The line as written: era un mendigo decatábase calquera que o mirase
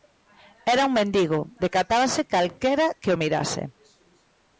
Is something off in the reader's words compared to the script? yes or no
no